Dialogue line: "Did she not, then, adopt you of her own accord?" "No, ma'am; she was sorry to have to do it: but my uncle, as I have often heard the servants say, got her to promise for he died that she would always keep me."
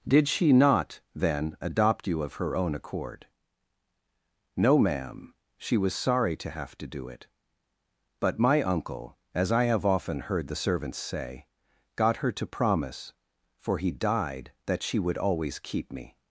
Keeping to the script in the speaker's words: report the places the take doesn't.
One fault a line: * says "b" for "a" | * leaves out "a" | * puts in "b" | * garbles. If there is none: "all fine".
all fine